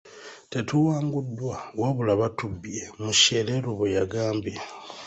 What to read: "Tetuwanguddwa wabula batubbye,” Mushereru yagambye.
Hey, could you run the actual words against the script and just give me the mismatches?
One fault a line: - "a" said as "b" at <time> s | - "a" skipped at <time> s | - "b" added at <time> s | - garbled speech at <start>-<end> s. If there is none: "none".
- "bwe" added at 3.8 s